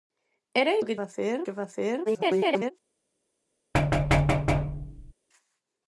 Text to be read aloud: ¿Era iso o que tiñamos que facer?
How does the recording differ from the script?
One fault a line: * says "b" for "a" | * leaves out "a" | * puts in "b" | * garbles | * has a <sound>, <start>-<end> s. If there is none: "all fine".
* leaves out "iso"
* says "facer" for "tiñamos"
* garbles
* has a thud, 3.7-5.1 s